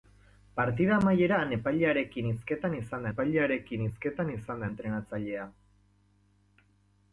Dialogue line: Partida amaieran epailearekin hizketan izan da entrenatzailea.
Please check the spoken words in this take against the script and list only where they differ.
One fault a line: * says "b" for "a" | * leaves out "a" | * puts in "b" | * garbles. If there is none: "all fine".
* puts in "epailearekin hizketan izan"